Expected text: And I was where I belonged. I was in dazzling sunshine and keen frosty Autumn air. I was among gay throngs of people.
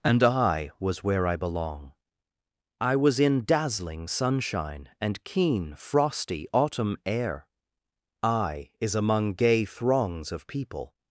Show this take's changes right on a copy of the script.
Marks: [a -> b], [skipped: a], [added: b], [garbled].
And I was where I [belonged. -> belong] I was in dazzling sunshine and keen frosty Autumn air. I [was -> is] among gay throngs of people.